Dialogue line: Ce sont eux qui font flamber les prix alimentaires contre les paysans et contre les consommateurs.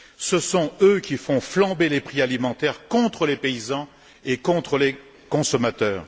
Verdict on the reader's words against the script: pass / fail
pass